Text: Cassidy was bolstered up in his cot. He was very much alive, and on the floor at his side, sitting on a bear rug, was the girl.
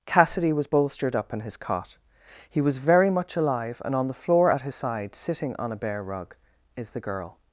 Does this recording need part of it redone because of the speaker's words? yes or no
yes